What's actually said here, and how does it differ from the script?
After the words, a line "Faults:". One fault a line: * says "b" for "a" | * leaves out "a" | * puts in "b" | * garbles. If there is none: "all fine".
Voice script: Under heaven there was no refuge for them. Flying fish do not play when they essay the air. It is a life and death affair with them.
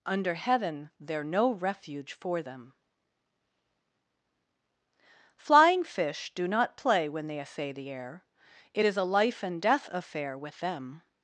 Under heaven there no refuge for them. Flying fish do not play when they essay the air. It is a life and death affair with them.
Faults:
* leaves out "was"